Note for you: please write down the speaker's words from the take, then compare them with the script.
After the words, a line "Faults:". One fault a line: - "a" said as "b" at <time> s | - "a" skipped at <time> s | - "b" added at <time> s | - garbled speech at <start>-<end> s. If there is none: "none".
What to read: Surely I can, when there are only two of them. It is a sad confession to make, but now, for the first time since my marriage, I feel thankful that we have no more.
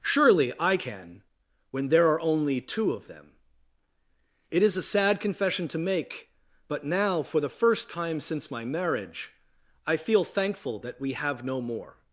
Surely I can, when there are only two of them. It is a sad confession to make, but now, for the first time since my marriage, I feel thankful that we have no more.
Faults:
none